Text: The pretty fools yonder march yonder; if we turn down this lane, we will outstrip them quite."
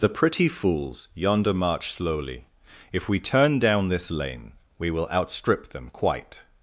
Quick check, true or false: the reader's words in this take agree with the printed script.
false